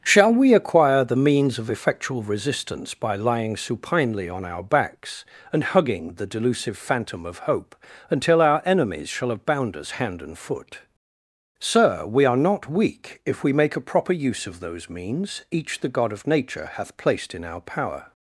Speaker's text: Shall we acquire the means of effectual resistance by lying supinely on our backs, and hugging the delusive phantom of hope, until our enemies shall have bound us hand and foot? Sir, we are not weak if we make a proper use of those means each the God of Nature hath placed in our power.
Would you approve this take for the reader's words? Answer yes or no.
yes